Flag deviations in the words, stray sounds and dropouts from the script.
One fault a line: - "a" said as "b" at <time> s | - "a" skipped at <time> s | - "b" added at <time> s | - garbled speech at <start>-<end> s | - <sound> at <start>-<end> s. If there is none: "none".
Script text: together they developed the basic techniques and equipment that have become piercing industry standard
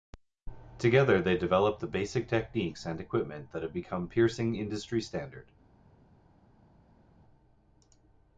none